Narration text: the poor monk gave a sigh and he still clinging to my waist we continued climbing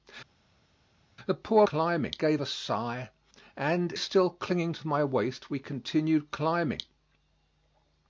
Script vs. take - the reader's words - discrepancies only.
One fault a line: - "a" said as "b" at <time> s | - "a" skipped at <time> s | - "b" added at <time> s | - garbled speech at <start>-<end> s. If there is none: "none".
- "monk" said as "climbing" at 1.6 s
- "he" skipped at 3.9 s